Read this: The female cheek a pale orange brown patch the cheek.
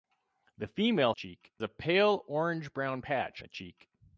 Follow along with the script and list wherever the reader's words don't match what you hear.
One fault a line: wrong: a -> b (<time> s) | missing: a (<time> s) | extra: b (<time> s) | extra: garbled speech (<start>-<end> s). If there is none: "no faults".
no faults